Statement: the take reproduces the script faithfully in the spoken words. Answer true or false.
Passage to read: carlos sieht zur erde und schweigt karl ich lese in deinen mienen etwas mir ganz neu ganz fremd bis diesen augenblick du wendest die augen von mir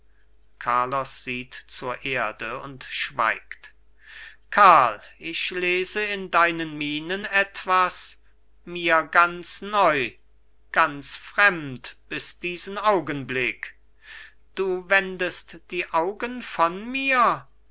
true